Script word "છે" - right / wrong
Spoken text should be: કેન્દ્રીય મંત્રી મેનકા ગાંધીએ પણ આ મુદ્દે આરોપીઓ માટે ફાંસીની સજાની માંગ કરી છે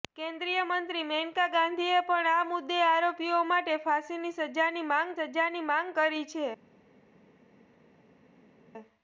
right